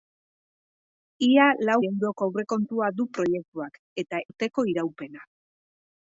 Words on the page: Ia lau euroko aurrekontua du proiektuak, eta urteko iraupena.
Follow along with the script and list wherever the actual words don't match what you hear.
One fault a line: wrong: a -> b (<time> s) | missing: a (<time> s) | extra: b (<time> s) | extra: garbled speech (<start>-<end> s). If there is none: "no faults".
no faults